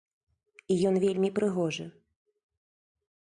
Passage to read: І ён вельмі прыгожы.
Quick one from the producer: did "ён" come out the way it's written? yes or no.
yes